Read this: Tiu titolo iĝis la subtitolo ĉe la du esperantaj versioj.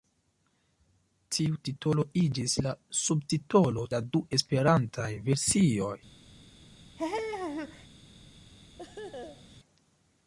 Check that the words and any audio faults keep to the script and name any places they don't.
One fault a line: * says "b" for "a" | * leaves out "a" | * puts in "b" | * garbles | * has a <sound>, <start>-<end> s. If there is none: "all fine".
* leaves out "ĉe"
* has a laugh, 7.0-7.9 s
* has a laugh, 8.8-9.6 s